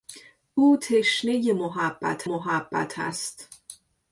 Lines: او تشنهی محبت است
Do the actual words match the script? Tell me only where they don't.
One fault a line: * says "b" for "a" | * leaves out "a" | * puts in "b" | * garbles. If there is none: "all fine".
* puts in "محبت"